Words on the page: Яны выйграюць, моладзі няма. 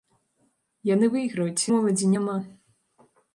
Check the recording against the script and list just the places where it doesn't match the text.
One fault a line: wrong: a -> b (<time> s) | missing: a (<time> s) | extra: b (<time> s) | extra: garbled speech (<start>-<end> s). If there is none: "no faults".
no faults